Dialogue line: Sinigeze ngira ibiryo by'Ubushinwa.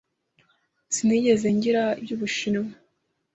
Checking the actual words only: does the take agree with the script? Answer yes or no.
no